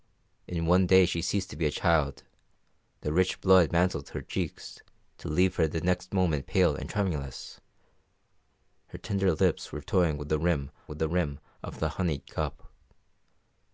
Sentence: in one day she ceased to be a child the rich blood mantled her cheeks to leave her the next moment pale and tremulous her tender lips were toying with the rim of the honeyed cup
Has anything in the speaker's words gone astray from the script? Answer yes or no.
yes